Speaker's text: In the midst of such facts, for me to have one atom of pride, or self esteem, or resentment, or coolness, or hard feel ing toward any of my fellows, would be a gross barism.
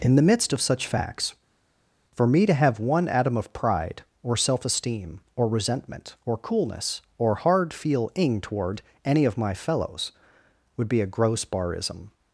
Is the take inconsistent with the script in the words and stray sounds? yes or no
no